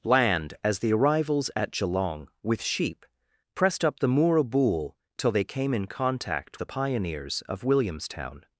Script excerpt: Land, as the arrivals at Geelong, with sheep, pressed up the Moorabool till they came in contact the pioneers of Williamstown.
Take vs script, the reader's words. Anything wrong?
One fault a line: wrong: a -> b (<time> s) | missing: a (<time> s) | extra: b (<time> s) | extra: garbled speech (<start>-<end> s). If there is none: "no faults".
no faults